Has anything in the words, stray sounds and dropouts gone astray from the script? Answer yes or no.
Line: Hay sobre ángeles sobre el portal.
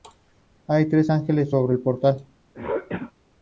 yes